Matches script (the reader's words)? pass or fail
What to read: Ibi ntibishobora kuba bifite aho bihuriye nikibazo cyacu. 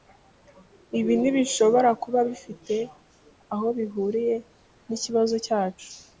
pass